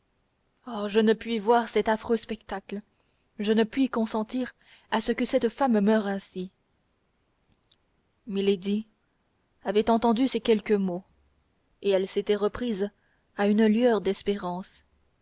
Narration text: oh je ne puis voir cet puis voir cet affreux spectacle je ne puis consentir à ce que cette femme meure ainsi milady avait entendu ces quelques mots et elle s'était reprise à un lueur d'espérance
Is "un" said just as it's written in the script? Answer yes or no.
no